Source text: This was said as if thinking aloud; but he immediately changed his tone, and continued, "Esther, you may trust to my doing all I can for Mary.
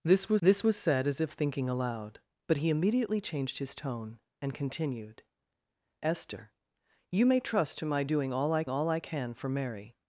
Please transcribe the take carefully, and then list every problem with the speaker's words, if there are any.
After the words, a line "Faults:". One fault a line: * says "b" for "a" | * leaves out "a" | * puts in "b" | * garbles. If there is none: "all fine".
This was this was said as if thinking aloud; but he immediately changed his tone, and continued, "Esther, you may trust to my doing all I all I can for Mary.
Faults:
* puts in "this was"
* puts in "all I"